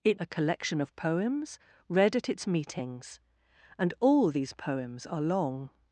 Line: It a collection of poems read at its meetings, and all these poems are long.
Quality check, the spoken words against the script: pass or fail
pass